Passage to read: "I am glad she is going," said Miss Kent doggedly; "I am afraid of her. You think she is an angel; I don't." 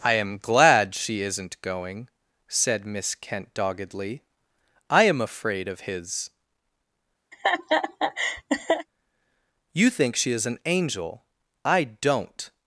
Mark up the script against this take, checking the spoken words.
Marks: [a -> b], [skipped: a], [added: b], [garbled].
"I am glad she [is -> isn't] going," said Miss Kent doggedly; "I am afraid of [her. -> his] You think she is an angel; I don't."